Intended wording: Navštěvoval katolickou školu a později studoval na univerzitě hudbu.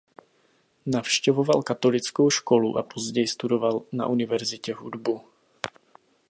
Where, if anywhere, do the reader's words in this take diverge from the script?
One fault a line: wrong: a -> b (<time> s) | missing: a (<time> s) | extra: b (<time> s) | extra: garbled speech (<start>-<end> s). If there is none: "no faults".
no faults